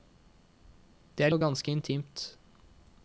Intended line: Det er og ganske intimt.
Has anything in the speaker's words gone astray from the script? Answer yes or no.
no